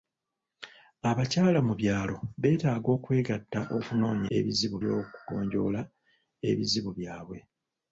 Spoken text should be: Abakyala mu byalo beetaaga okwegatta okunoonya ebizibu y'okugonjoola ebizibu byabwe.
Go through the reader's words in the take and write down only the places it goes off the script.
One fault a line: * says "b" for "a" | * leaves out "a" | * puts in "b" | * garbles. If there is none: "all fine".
all fine